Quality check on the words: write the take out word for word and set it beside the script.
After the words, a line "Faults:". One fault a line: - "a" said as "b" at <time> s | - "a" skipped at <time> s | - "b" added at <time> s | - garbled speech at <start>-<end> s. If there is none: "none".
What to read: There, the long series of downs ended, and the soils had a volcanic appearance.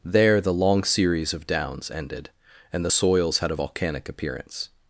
There, the long series of downs ended, and the soils had a volcanic appearance.
Faults:
none